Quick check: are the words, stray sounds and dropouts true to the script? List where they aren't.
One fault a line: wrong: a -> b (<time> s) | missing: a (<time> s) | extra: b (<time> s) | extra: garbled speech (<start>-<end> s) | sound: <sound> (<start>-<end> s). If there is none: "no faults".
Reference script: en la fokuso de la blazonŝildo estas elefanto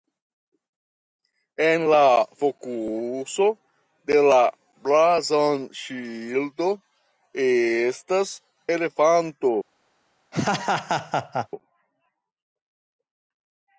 sound: laugh (10.3-11.5 s)